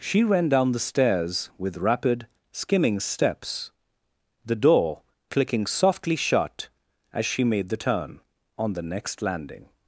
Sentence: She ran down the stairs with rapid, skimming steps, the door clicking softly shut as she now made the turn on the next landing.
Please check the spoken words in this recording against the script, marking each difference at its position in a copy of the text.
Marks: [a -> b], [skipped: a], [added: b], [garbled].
She ran down the stairs with rapid, skimming steps, the door clicking softly shut as she [skipped: now] made the turn on the next landing.